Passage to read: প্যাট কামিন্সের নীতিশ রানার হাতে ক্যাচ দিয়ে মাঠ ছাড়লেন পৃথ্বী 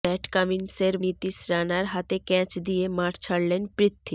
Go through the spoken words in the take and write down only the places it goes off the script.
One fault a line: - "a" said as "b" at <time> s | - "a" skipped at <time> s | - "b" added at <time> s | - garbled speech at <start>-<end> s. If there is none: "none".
none